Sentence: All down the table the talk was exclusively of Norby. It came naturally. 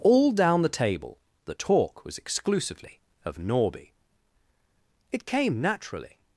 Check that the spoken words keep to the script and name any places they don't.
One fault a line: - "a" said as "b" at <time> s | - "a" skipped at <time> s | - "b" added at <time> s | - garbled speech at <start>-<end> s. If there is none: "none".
none